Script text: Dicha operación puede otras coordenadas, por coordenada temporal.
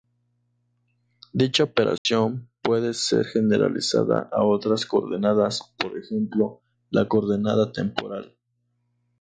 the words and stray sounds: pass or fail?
fail